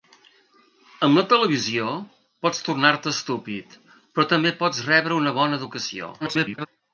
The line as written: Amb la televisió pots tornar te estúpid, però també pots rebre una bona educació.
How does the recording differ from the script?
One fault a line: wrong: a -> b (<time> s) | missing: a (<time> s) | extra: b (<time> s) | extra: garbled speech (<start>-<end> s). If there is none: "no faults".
extra: garbled speech (6.2-6.7 s)